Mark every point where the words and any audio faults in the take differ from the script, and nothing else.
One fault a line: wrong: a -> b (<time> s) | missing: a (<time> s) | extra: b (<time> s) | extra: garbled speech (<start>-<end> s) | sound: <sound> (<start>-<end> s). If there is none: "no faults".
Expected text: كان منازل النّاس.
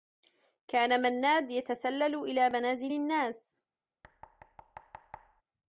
extra: منّاد يتسلّل إلى (1.0 s)
sound: thud (4.0-5.4 s)